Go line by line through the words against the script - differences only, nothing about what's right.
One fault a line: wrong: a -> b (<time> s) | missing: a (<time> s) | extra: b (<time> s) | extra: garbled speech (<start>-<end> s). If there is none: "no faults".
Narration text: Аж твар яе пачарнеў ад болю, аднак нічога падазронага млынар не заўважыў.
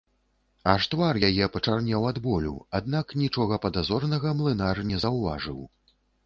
no faults